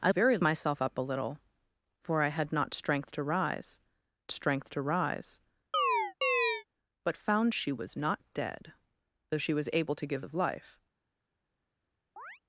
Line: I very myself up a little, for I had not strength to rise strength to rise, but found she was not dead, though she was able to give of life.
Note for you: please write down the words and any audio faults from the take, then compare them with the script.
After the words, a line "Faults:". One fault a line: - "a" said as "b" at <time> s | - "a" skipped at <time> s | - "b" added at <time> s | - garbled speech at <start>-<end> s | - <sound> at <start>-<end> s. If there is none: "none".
I very myself up a little, for I had not strength to rise strength to rise, but found she was not dead, though she was able to give of life.
Faults:
- chirp at 5.7-6.6 s
- chirp at 12.2-12.4 s